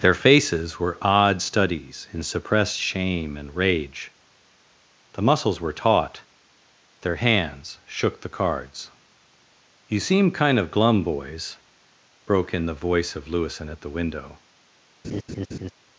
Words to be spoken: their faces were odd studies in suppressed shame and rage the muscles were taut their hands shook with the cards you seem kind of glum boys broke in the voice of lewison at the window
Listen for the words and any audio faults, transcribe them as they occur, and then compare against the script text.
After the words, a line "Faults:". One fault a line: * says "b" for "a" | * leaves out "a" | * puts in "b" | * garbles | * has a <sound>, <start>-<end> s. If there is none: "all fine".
their faces were odd studies in suppressed shame and rage the muscles were taut their hands shook the cards you seem kind of glum boys broke in the voice of lewison at the window
Faults:
* leaves out "with"
* has a laugh, 15.0-15.7 s